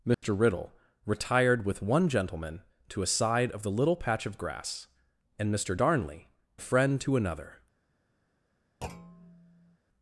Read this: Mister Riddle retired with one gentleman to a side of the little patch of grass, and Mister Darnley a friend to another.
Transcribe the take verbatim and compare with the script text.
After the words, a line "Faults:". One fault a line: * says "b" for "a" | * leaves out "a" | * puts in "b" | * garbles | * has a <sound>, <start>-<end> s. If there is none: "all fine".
Mister Riddle retired with one gentleman to a side of the little patch of grass, and Mister Darnley a friend to another.
Faults:
* has a dropout, 0.1-0.2 s
* has a thud, 8.8-9.8 s